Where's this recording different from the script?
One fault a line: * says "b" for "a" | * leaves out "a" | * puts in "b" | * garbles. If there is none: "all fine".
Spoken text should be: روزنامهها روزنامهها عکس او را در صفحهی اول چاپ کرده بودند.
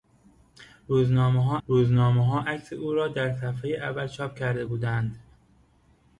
all fine